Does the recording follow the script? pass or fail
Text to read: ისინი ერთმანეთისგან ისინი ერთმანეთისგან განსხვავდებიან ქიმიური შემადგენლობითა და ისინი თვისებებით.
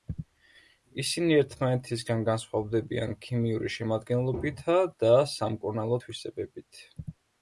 fail